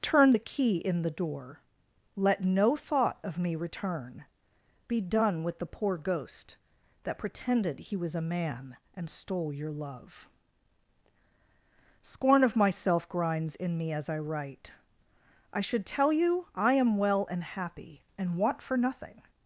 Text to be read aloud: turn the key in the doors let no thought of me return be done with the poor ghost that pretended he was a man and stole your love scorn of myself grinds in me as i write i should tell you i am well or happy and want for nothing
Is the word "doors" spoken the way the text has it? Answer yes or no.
no